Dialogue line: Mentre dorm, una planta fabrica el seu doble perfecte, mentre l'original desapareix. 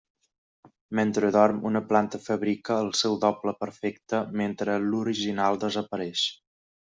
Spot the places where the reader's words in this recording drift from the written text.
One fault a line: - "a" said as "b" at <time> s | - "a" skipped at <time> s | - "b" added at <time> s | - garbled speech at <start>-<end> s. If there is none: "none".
none